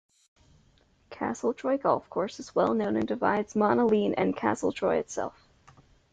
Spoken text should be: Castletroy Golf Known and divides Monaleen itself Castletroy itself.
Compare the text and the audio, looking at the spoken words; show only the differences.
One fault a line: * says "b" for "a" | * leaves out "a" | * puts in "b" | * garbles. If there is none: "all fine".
* puts in "Course is well"
* says "and" for "itself"